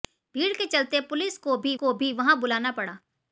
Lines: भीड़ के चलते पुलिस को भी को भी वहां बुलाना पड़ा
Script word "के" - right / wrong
right